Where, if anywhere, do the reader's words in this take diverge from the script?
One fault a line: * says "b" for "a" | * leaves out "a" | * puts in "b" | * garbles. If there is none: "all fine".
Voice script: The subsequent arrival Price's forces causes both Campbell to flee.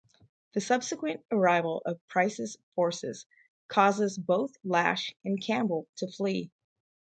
* puts in "of"
* puts in "Lash and"